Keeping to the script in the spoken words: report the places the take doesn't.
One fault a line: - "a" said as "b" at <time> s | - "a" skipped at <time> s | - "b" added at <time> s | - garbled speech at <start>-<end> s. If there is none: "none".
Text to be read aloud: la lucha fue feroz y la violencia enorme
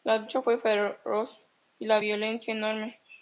none